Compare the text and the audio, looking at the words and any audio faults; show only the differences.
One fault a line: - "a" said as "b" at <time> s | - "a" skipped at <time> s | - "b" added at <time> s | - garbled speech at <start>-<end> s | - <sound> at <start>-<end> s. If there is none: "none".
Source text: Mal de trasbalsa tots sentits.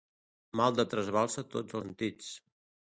none